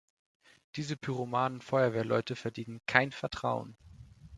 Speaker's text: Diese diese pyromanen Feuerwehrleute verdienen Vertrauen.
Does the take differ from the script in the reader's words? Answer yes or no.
yes